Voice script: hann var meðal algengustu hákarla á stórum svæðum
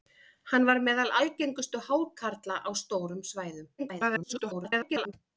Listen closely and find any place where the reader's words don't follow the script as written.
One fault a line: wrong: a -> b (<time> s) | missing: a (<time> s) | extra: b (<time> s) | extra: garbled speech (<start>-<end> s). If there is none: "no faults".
extra: garbled speech (3.8-5.1 s)